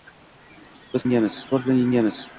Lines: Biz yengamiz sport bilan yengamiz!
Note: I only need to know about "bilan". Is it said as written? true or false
true